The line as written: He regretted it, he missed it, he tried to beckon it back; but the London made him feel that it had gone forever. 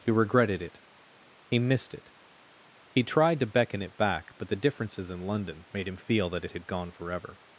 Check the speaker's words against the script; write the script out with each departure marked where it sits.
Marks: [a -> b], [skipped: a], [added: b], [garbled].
He regretted it, he missed it, he tried to beckon it back; but the [added: differences in] London made him feel that it had gone forever.